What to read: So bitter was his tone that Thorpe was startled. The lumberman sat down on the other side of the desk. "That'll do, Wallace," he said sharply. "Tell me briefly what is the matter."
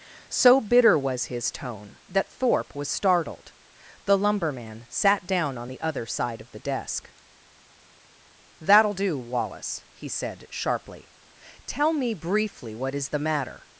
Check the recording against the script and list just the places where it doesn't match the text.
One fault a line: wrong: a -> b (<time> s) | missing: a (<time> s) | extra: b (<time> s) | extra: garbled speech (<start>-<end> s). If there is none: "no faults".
no faults